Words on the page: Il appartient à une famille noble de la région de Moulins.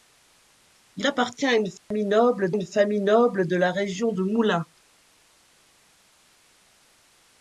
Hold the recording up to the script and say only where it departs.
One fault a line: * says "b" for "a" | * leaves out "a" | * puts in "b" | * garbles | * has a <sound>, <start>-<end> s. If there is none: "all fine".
* has a dropout, 1.8-1.9 s
* puts in "une famille noble"